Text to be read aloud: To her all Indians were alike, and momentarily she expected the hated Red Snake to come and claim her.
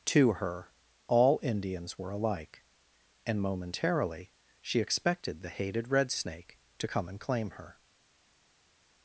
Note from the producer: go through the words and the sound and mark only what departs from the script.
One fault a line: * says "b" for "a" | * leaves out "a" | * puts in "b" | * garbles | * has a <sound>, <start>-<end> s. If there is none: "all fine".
all fine